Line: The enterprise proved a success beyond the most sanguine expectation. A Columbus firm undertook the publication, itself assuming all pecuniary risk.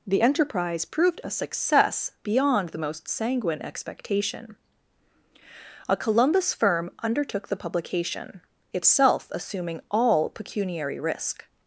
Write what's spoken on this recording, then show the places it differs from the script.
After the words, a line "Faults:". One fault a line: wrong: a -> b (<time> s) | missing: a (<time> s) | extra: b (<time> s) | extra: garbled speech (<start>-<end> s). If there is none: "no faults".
The enterprise proved a success beyond the most sanguine expectation. A Columbus firm undertook the publication, itself assuming all pecuniary risk.
Faults:
no faults